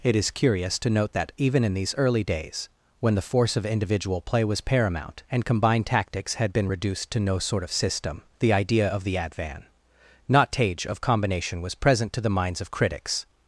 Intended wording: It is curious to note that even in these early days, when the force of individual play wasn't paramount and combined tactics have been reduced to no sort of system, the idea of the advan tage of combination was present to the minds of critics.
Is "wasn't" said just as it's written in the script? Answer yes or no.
no